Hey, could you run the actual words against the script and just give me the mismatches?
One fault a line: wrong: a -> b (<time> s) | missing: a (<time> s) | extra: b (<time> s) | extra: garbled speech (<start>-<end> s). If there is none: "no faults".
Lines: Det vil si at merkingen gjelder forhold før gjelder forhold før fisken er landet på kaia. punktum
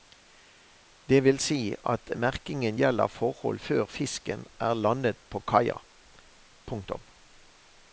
missing: gjelder forhold før (3.9 s)